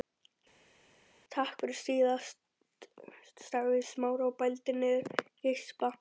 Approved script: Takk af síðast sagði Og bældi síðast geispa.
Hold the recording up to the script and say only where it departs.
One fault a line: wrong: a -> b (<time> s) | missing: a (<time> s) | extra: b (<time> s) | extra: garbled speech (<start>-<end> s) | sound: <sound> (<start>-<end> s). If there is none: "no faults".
wrong: af -> fyrir (1.6 s)
extra: Smári (3.9 s)
wrong: síðast -> niður (4.8 s)